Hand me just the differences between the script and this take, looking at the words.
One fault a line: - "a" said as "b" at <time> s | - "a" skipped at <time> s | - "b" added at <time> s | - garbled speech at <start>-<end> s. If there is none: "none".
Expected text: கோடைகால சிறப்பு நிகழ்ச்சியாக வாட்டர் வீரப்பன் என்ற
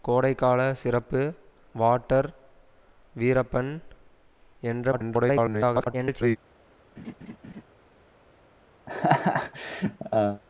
- "நிகழ்ச்சியாக" skipped at 1.2 s
- garbled speech at 4.9-6.4 s